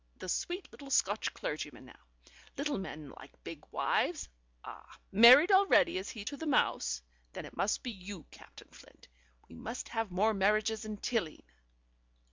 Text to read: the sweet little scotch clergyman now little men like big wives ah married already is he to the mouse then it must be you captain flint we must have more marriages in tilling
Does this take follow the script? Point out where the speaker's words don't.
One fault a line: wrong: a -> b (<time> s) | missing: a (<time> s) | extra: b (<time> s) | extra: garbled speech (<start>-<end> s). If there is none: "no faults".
no faults